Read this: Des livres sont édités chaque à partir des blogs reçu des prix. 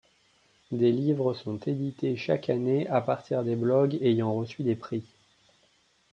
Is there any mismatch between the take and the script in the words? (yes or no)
yes